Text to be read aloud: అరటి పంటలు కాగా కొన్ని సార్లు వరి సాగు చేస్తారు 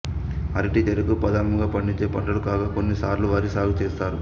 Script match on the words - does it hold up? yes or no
no